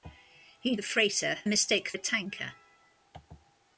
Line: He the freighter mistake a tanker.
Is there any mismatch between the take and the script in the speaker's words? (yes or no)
no